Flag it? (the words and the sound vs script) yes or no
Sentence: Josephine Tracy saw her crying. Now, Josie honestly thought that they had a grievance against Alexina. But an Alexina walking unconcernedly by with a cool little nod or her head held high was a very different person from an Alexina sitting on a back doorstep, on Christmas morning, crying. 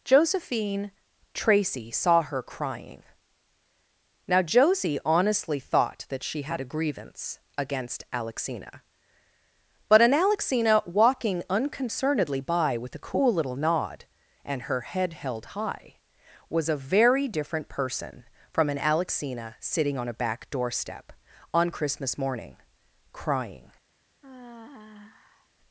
yes